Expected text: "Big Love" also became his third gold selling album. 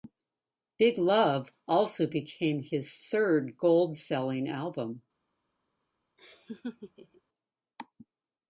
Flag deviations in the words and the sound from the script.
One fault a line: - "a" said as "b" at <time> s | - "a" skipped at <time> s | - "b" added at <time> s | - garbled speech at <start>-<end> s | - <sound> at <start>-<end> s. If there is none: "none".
- laugh at 6.2-7.2 s